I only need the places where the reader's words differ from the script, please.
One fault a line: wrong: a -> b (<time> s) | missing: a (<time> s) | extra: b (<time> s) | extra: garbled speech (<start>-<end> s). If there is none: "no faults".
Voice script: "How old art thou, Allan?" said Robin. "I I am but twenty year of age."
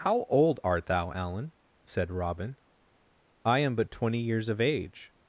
missing: I (3.6 s)
wrong: year -> years (4.2 s)